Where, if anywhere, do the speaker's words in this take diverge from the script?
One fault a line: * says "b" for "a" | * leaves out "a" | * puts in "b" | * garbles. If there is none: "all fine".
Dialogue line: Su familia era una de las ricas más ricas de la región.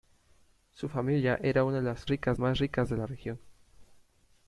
all fine